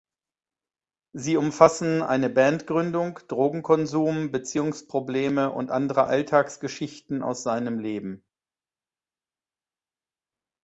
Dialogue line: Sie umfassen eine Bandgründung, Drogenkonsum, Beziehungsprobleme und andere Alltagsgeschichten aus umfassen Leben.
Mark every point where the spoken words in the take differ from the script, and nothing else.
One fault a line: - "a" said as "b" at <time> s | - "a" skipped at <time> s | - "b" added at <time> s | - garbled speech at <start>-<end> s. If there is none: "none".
- "umfassen" said as "seinem" at 7.4 s